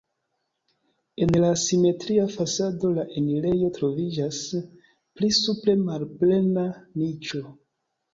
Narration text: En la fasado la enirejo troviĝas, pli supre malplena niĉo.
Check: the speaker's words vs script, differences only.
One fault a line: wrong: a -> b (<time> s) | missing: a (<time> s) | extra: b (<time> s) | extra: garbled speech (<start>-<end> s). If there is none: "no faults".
extra: simetria (1.6 s)